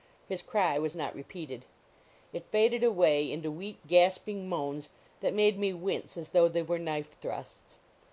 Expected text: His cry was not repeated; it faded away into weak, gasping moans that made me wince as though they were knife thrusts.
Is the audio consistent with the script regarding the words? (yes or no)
yes